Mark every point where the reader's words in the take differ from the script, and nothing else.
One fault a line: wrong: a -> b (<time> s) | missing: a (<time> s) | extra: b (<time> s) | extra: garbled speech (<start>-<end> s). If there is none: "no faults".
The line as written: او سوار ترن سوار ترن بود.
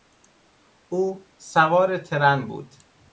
missing: سوار ترن (2.5 s)